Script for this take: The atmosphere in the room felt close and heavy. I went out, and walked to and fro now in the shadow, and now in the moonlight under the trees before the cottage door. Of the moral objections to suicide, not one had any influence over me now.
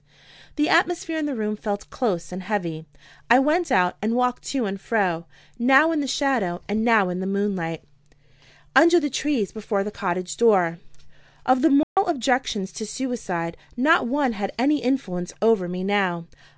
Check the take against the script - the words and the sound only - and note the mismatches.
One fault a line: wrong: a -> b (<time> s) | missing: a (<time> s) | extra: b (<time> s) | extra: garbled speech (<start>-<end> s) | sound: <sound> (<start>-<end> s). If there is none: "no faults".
sound: dropout (11.8-12.0 s)